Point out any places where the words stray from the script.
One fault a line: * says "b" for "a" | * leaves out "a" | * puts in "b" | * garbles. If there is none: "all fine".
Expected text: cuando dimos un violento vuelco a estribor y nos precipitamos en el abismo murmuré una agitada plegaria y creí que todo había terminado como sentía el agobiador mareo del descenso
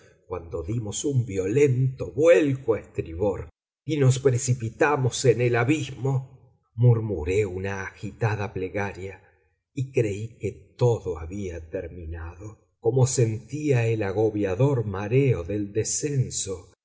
all fine